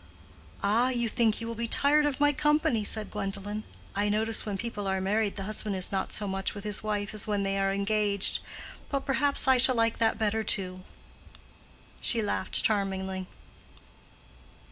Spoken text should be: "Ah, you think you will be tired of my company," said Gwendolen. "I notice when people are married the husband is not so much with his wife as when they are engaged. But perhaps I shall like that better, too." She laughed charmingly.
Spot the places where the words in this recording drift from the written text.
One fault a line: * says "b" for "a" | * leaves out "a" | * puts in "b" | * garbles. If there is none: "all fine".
all fine